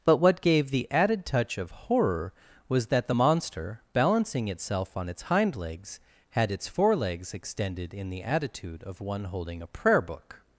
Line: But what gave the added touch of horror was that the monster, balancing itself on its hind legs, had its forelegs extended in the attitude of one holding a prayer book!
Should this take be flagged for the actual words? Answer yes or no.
no